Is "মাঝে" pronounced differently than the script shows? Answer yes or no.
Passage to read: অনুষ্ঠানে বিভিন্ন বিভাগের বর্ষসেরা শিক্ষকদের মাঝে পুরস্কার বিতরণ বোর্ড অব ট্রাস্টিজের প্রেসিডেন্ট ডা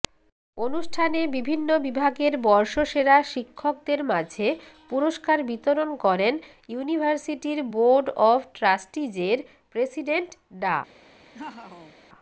no